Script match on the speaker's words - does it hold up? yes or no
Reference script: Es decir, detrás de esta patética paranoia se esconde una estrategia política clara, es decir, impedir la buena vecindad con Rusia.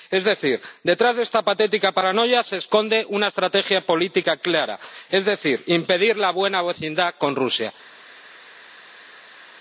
yes